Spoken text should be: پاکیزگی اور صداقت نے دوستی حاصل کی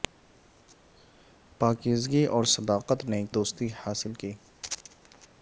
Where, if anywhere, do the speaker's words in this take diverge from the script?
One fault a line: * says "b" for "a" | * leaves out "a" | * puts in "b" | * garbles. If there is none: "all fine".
all fine